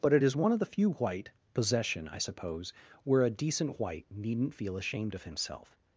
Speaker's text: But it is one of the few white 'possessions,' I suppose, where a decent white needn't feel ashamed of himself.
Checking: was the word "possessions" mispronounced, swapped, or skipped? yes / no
yes